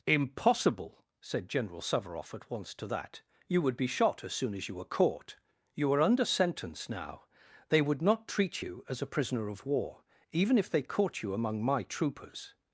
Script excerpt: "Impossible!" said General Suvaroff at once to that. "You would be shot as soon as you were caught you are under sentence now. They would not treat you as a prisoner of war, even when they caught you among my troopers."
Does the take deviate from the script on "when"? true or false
true